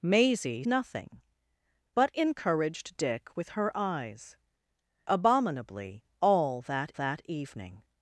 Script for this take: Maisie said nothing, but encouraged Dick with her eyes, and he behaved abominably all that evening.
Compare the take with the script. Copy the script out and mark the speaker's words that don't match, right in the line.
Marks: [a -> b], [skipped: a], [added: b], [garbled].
Maisie [skipped: said] nothing, but encouraged Dick with her eyes, [skipped: and he behaved] abominably all that [added: that] evening.